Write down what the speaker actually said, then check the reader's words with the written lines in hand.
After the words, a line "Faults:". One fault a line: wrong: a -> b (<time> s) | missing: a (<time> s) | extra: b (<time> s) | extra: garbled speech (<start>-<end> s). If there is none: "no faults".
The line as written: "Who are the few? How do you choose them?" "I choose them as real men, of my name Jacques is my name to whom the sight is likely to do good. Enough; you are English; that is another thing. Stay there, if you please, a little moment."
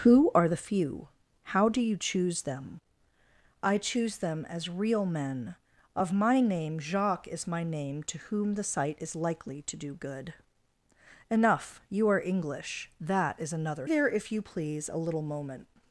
"Who are the few? How do you choose them?" "I choose them as real men, of my name Jacques is my name to whom the sight is likely to do good. Enough; you are English; that is another there, if you please, a little moment."
Faults:
missing: thing Stay (13.9 s)